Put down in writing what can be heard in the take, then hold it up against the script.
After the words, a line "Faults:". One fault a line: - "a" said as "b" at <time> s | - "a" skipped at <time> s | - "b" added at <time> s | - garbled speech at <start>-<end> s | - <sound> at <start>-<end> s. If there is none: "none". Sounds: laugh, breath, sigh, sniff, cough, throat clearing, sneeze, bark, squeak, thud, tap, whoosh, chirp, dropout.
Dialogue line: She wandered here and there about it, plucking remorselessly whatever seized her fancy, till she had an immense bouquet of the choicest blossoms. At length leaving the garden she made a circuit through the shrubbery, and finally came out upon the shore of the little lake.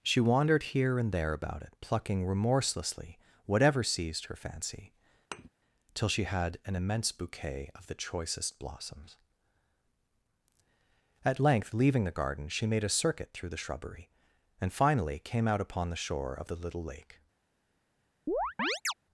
She wandered here and there about it, plucking remorselessly whatever seized her fancy, till she had an immense bouquet of the choicest blossoms. At length leaving the garden she made a circuit through the shrubbery, and finally came out upon the shore of the little lake.
Faults:
- thud at 5.3-5.5 s
- chirp at 18.3-18.9 s